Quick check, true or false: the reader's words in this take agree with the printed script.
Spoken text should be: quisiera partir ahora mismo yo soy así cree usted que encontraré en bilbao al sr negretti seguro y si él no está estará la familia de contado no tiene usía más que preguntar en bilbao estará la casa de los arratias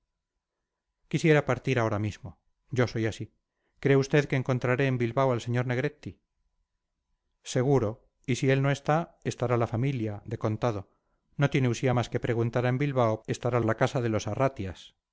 true